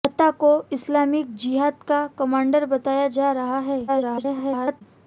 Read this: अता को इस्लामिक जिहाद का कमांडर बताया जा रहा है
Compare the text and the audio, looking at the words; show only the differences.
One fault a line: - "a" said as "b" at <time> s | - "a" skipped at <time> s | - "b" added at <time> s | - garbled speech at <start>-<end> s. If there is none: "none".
- garbled speech at 3.9-4.8 s